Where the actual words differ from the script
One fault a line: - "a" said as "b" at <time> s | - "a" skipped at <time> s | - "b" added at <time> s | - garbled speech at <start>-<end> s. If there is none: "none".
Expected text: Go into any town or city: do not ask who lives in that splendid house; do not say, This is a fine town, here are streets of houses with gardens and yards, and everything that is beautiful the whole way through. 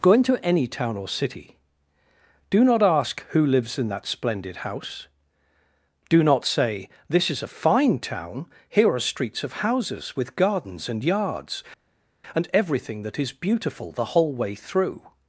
none